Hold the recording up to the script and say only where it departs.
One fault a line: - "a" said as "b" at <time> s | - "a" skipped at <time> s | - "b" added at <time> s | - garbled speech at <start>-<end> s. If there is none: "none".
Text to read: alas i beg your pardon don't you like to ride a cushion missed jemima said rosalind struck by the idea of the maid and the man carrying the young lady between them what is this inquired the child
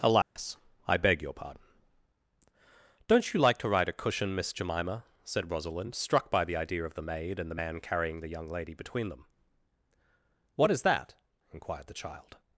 - "missed" said as "miss" at 4.3 s
- "this" said as "that" at 10.8 s